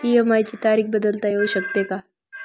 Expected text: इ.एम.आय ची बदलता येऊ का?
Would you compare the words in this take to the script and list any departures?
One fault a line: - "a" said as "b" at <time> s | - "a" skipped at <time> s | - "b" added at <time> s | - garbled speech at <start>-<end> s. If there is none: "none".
- "तारीख" added at 0.6 s
- "शकते" added at 1.5 s